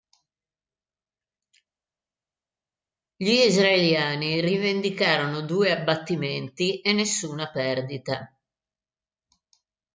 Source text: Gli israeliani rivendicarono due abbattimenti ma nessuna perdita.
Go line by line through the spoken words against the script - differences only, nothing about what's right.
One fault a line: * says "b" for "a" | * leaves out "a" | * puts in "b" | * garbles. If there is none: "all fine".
* says "e" for "ma"